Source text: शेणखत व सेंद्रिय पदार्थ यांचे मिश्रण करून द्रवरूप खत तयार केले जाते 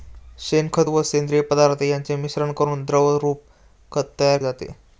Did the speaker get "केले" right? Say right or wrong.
wrong